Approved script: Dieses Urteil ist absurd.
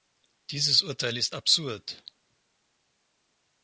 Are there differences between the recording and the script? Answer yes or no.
no